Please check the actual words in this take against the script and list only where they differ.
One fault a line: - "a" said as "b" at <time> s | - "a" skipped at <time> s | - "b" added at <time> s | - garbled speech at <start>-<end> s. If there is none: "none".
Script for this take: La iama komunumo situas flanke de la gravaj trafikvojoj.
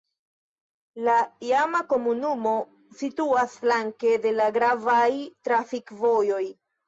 none